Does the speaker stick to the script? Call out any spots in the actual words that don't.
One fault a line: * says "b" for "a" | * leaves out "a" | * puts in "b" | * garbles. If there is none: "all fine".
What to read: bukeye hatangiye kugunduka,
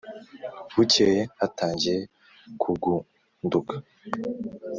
all fine